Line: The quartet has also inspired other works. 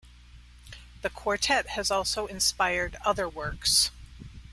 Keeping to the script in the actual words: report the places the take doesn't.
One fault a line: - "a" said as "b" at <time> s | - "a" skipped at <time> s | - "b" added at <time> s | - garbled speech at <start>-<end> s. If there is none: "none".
none